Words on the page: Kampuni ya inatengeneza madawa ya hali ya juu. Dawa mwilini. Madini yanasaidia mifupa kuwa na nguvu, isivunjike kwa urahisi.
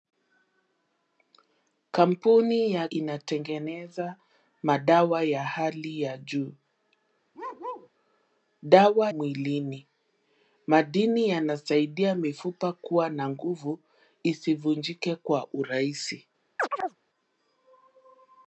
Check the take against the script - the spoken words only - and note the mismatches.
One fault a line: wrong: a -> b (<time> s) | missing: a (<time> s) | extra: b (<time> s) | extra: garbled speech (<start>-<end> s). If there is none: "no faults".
no faults